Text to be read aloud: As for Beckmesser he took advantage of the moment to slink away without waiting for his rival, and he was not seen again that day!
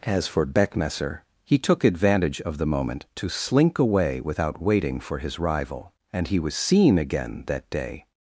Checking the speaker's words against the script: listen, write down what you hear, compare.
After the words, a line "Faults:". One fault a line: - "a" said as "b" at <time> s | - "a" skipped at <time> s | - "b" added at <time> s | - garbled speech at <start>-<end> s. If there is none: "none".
As for Beckmesser he took advantage of the moment to slink away without waiting for his rival, and he was seen again that day!
Faults:
- "not" skipped at 6.5 s